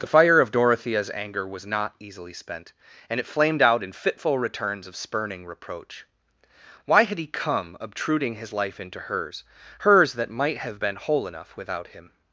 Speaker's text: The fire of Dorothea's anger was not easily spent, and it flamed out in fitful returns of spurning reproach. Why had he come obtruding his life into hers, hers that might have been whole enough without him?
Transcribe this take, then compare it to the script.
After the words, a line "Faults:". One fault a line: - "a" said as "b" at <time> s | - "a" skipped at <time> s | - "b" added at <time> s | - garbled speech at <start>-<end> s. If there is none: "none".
The fire of Dorothea's anger was not easily spent, and it flamed out in fitful returns of spurning reproach. Why had he come obtruding his life into hers, hers that might have been whole enough without him?
Faults:
none